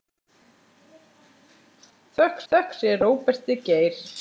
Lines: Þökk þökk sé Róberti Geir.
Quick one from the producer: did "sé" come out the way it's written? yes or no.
yes